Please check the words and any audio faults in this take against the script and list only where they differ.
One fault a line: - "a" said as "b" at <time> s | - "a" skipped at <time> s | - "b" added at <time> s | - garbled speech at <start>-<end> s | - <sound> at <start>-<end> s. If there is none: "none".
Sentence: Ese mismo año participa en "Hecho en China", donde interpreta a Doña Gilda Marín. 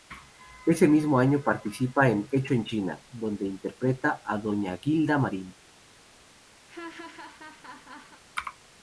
- laugh at 6.7-8.2 s